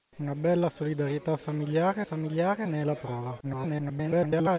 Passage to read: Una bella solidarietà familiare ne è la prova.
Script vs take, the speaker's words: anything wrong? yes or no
yes